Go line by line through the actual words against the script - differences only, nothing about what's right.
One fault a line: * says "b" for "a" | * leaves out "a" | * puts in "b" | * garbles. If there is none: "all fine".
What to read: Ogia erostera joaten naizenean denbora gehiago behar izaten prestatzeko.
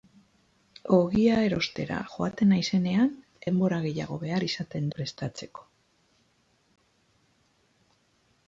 all fine